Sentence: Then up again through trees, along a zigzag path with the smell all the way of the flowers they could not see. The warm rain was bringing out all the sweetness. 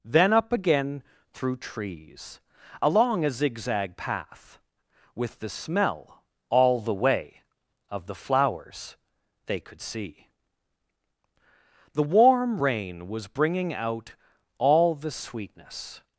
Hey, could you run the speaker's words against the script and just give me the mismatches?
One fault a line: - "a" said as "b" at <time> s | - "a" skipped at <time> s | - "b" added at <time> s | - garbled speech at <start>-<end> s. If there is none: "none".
- "not" skipped at 9.8 s